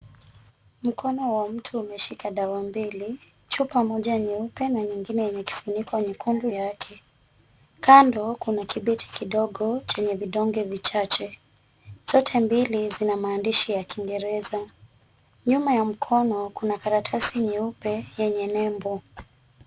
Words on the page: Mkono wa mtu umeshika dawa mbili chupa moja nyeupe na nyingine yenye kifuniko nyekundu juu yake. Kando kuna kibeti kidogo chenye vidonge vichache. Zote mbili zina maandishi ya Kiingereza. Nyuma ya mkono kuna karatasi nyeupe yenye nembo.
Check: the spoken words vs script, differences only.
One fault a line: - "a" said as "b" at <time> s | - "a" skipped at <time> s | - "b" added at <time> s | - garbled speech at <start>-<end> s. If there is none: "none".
- "juu" skipped at 6.5 s